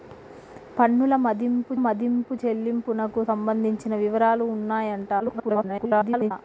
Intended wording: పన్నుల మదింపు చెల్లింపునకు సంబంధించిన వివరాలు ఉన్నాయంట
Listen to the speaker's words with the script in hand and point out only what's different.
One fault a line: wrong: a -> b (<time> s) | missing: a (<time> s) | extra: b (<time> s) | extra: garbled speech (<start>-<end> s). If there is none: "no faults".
extra: మదింపు (1.7 s)
extra: garbled speech (5.2-6.3 s)